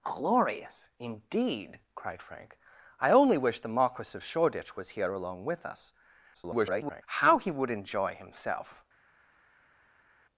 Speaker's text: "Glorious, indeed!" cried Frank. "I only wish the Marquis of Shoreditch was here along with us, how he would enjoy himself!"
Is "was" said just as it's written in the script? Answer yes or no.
yes